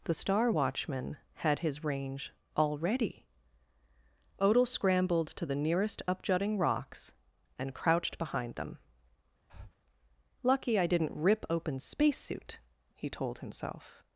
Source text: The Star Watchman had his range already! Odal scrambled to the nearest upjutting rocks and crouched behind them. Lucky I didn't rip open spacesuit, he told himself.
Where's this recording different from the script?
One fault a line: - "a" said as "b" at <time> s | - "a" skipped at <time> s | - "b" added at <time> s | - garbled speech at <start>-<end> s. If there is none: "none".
none